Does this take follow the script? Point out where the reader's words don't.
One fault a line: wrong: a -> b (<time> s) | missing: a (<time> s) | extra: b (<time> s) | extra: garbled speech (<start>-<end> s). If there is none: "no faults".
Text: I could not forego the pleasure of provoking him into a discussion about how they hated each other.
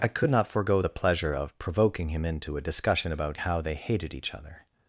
no faults